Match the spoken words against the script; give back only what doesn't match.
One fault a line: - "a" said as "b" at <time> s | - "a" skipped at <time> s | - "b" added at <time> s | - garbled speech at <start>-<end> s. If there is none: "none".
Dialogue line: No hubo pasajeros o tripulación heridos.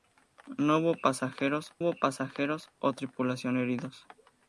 - "hubo pasajeros" added at 1.8 s